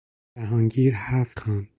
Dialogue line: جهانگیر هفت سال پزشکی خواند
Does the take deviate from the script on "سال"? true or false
true